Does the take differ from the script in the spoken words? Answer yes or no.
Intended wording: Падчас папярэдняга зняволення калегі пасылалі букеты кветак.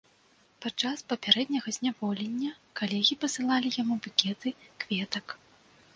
yes